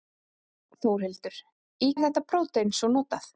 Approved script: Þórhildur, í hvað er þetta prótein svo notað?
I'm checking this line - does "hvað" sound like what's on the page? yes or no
no